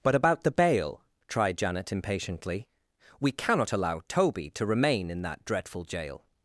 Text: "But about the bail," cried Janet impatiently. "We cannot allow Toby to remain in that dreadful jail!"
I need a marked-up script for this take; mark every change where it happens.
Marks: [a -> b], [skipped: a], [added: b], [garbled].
"But about the bail," [cried -> tried] Janet impatiently. "We cannot allow Toby to remain in that dreadful jail!"